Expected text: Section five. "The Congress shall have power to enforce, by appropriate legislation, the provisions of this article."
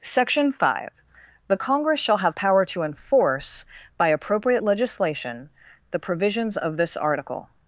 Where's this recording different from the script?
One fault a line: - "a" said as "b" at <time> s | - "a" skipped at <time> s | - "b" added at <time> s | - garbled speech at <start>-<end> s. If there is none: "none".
none